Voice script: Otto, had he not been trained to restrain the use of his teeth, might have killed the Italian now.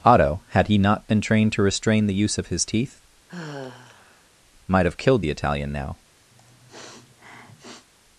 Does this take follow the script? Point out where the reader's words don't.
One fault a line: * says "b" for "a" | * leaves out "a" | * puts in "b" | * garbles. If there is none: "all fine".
all fine